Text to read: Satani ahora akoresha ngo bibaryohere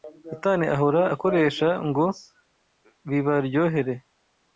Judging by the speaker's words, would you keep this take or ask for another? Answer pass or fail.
pass